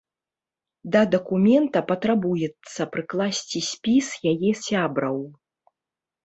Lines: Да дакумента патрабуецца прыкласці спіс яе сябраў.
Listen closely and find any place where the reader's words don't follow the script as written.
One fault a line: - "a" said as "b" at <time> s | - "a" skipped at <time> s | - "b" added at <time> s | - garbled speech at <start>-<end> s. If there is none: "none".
none